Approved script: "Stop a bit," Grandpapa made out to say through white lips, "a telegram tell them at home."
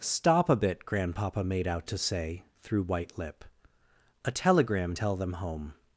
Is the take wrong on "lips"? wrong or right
wrong